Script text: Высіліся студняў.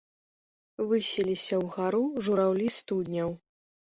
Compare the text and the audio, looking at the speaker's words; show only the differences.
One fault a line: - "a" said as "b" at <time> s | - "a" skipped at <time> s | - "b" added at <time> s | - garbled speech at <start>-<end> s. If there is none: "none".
- "ўгару жураўлі" added at 1.6 s